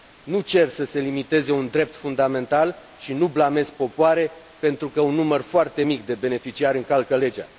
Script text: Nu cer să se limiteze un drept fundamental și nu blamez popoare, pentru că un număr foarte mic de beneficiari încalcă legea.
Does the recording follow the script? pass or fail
pass